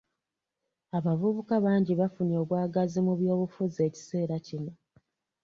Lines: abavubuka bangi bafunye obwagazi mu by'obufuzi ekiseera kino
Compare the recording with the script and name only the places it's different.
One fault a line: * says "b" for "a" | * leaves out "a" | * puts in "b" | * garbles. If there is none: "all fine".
all fine